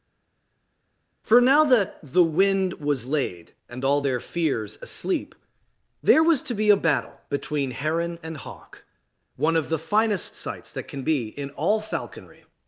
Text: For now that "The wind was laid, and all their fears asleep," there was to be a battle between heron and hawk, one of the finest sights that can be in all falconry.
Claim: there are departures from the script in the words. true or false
false